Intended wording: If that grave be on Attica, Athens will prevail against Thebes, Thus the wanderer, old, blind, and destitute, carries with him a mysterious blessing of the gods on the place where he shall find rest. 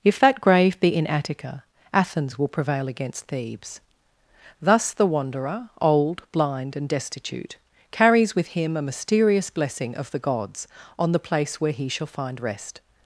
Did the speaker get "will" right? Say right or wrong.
right